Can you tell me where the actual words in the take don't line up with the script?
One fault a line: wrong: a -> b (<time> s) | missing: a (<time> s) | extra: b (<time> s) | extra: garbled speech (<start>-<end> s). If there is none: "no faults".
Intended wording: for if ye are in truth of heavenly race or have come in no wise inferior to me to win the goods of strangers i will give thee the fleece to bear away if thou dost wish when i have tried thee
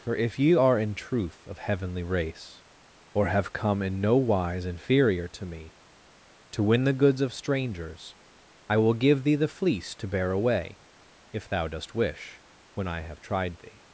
no faults